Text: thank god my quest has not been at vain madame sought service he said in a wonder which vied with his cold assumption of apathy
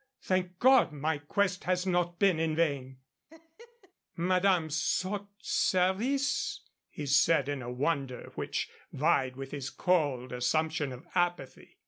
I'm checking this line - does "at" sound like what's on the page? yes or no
no